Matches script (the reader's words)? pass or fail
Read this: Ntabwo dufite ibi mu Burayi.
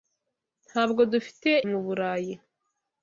fail